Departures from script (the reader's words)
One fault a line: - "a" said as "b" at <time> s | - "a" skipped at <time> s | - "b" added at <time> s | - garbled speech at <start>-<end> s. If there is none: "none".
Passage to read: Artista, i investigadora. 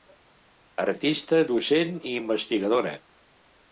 - "docent" added at 1.5 s